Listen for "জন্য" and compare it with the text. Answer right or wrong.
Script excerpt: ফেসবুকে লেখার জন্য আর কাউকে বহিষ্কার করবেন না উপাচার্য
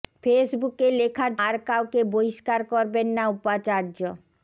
wrong